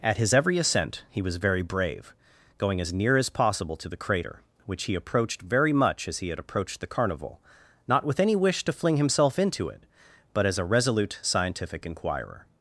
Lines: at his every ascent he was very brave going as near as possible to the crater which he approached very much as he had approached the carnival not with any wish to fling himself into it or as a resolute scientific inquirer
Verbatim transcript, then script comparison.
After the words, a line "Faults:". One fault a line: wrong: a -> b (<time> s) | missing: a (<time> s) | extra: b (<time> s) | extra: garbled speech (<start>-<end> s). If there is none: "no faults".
at his every ascent he was very brave going as near as possible to the crater which he approached very much as he had approached the carnival not with any wish to fling himself into it but as a resolute scientific inquirer
Faults:
wrong: or -> but (10.3 s)